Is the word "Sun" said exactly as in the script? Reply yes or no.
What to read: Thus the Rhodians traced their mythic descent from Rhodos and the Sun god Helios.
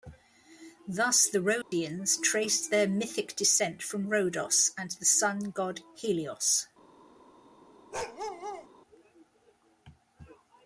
yes